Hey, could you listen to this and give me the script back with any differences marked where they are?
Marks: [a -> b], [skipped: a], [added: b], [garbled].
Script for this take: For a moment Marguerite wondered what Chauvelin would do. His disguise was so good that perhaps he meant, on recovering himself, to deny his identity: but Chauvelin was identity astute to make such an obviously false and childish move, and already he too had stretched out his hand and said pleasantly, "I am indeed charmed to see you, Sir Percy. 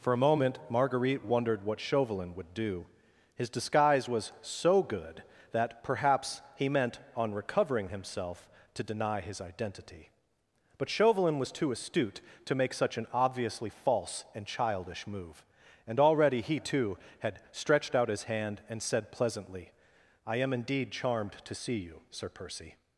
For a moment Marguerite wondered what Chauvelin would do. His disguise was so good that perhaps he meant, on recovering himself, to deny his identity: but Chauvelin was [identity -> too] astute to make such an obviously false and childish move, and already he too had stretched out his hand and said pleasantly, "I am indeed charmed to see you, Sir Percy.